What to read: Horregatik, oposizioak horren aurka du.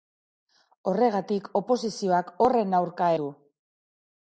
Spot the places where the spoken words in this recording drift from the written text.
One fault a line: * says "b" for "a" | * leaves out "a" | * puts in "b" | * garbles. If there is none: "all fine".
all fine